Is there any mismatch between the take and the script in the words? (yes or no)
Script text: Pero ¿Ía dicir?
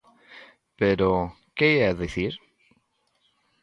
yes